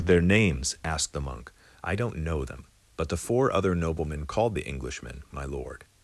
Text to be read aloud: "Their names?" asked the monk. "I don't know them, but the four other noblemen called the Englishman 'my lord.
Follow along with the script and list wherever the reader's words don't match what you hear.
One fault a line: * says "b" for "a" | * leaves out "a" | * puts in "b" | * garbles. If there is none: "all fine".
all fine